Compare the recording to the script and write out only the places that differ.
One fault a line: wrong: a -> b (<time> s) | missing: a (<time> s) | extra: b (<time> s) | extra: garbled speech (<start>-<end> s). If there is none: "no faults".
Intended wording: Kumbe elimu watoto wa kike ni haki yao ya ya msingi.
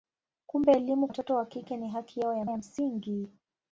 no faults